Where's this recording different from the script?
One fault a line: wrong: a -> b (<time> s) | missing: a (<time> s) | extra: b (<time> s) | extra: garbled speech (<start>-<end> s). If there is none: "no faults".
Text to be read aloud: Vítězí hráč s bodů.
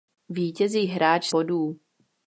no faults